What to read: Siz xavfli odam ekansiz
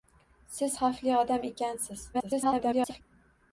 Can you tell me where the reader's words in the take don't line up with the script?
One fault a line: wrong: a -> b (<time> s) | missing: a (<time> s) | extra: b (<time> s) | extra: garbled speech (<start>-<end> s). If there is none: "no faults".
extra: garbled speech (2.1-3.0 s)